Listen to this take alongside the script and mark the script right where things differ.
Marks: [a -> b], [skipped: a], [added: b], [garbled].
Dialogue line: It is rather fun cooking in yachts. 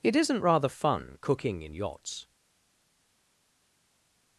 It [is -> isn't] rather fun cooking in yachts.